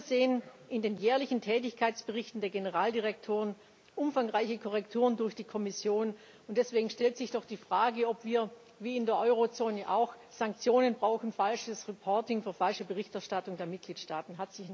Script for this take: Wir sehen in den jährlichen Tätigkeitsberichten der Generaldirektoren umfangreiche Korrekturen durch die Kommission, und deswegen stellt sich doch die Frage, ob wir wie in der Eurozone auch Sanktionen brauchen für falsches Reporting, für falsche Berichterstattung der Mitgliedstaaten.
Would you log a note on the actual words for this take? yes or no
yes